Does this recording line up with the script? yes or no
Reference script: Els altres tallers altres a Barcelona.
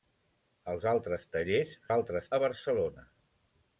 yes